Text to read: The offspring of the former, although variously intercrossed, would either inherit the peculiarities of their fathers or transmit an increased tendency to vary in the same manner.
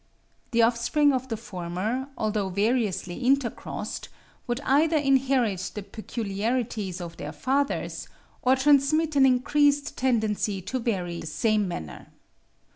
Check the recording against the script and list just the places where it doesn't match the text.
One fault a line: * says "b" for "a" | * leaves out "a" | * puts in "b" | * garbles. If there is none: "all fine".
* leaves out "in"